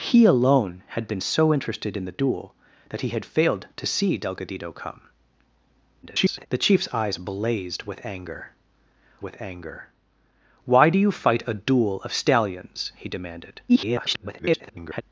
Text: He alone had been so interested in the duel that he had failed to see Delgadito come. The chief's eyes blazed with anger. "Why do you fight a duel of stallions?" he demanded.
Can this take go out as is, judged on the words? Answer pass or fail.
fail